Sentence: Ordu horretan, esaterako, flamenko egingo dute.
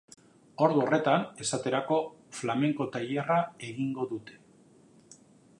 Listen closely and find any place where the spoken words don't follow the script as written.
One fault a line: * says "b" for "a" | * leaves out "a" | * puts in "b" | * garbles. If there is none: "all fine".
* puts in "tailerra"